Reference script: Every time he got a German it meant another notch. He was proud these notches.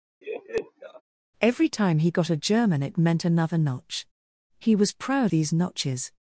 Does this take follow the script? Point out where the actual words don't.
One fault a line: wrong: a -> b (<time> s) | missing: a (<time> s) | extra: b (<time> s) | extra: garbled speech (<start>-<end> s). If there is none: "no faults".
no faults